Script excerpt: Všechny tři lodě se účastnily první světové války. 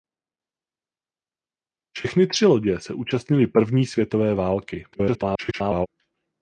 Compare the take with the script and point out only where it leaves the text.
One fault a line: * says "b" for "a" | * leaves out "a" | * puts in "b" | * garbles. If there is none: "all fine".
* garbles